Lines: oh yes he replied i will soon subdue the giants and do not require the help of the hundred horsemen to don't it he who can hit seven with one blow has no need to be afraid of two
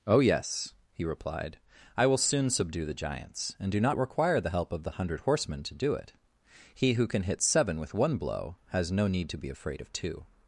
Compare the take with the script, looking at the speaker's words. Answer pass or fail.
fail